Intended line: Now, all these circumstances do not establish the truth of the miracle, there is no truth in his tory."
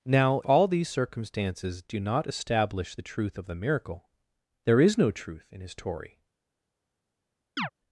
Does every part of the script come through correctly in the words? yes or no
yes